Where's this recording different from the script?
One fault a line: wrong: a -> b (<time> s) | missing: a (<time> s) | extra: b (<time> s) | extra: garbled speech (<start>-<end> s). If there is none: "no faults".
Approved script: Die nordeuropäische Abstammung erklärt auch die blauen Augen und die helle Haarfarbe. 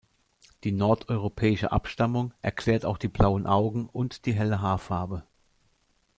no faults